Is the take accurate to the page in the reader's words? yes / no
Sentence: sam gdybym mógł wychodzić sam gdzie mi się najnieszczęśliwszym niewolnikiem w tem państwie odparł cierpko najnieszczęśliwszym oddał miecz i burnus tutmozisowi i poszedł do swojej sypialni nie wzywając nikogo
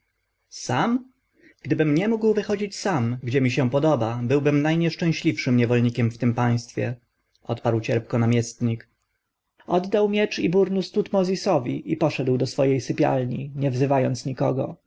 no